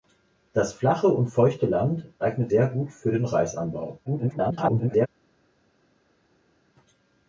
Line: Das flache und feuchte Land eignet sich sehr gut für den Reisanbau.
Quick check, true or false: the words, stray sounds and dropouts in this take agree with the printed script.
false